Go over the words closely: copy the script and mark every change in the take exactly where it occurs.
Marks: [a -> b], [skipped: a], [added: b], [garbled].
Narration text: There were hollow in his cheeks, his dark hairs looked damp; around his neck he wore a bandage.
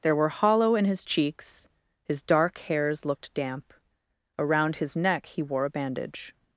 There were hollow in his cheeks, his dark hairs looked damp; around his neck he wore a bandage.